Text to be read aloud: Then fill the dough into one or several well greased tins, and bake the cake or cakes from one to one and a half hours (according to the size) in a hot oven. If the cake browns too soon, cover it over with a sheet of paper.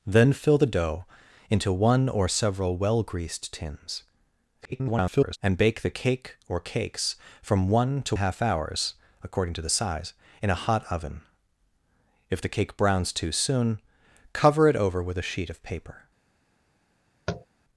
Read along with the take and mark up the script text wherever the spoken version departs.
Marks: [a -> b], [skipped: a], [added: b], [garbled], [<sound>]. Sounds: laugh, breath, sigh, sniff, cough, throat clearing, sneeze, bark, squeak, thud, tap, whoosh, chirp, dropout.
Then fill the dough into one or several well greased tins, [garbled] and bake the cake or cakes from one to [skipped: one and] a half hours (according to the size) in a hot oven. If the cake browns too soon, cover it over with a sheet of paper. [tap]